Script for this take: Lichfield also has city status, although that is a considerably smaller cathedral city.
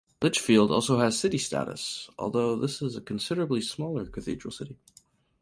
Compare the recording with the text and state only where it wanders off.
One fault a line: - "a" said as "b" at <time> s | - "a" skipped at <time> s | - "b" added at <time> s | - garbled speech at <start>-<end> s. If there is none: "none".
- "that" said as "this" at 2.5 s